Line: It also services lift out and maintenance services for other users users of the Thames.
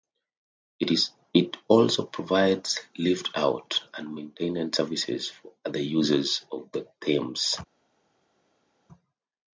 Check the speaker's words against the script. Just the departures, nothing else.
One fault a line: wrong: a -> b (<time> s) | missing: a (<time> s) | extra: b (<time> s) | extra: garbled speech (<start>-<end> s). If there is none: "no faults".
wrong: services -> provides (2.0 s)
missing: users (6.5 s)